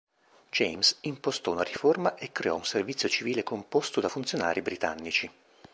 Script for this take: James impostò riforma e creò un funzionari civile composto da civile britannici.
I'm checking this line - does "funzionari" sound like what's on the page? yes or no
no